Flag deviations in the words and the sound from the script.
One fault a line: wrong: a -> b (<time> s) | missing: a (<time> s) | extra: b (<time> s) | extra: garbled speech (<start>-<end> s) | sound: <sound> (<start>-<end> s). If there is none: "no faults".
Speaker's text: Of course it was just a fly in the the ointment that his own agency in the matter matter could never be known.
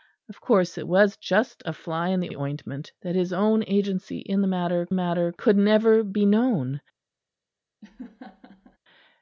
sound: laugh (7.8-8.8 s)